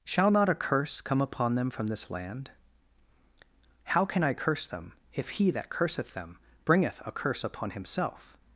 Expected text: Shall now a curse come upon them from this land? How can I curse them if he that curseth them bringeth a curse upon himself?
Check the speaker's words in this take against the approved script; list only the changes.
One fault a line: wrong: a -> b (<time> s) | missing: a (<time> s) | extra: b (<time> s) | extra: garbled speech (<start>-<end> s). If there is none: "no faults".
wrong: now -> not (0.3 s)